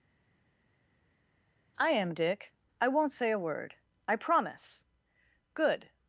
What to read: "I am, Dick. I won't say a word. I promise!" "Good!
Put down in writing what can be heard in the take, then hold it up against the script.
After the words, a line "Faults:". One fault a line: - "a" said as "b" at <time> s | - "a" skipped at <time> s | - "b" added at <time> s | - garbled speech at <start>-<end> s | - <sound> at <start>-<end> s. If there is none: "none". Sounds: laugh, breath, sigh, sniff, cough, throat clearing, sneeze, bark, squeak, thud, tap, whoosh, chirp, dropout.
"I am, Dick. I won't say a word. I promise!" "Good!
Faults:
none